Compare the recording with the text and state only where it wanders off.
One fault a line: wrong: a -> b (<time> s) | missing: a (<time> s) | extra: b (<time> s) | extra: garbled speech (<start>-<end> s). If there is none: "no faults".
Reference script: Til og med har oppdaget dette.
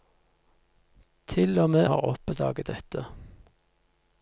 no faults